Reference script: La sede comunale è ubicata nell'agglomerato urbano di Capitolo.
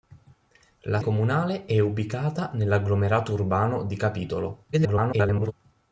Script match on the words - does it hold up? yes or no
no